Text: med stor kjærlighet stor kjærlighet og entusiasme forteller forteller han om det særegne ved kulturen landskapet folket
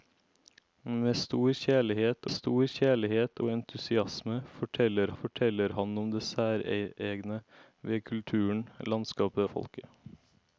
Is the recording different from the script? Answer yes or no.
no